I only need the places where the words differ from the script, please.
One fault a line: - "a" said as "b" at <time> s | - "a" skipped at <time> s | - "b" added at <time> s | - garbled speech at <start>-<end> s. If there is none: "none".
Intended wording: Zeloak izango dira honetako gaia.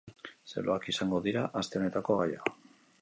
- "aste" added at 1.6 s